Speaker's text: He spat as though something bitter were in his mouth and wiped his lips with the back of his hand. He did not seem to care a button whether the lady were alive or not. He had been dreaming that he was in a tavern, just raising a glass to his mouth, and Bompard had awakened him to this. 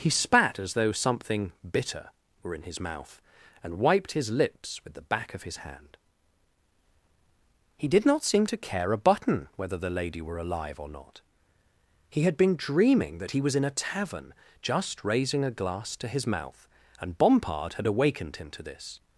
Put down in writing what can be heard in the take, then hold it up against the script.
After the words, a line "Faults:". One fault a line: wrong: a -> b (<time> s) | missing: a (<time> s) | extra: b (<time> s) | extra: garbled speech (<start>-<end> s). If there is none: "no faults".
He spat as though something bitter were in his mouth and wiped his lips with the back of his hand. He did not seem to care a button whether the lady were alive or not. He had been dreaming that he was in a tavern, just raising a glass to his mouth, and Bompard had awakened him to this.
Faults:
no faults